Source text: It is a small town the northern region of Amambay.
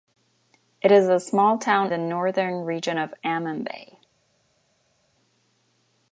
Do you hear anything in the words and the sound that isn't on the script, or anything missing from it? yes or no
no